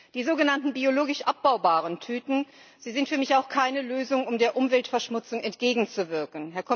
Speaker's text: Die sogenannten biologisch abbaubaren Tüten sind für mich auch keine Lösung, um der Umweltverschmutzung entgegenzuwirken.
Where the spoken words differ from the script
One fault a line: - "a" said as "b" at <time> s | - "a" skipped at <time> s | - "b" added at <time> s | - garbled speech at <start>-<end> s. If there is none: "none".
none